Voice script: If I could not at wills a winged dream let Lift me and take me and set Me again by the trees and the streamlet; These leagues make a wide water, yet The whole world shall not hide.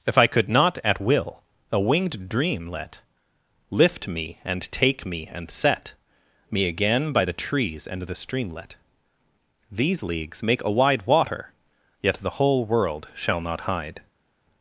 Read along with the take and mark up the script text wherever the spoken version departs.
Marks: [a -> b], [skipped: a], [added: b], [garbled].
If I could not at [wills -> will] a winged dream let Lift me and take me and set Me again by the trees and the streamlet; These leagues make a wide water, yet The whole world shall not hide.